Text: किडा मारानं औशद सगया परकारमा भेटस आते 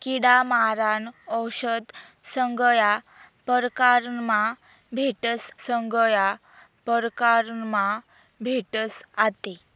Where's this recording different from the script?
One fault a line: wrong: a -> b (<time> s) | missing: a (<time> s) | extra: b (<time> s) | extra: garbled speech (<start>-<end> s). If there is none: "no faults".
extra: सगया परकारमा भेटस (5.7 s)